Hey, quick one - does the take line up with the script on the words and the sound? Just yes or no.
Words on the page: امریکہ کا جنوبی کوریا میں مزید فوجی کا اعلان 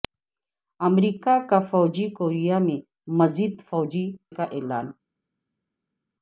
yes